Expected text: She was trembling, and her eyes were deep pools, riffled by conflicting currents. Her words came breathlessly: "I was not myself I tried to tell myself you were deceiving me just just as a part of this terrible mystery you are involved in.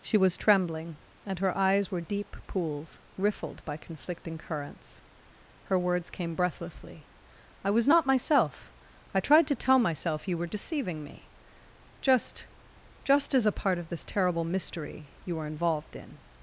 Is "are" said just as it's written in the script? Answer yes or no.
no